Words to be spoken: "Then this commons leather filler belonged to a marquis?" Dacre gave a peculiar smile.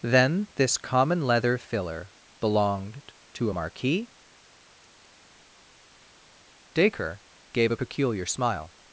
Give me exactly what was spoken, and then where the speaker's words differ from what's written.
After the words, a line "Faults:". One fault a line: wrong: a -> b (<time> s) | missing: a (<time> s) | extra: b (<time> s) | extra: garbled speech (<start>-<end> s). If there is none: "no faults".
"Then this common leather filler belonged to a marquis?" Dacre gave a peculiar smile.
Faults:
wrong: commons -> common (0.8 s)